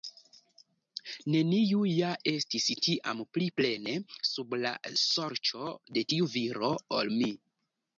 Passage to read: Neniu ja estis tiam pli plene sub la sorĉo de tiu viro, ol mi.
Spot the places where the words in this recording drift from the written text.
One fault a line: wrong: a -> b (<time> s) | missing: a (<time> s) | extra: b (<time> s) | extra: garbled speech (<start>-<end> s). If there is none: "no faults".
no faults